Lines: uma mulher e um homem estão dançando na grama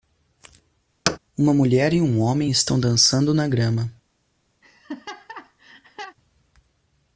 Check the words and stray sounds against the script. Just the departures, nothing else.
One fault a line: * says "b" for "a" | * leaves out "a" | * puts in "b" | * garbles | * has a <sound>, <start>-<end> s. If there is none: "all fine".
* has a thud, 1.1-1.2 s
* has a laugh, 4.6-6.2 s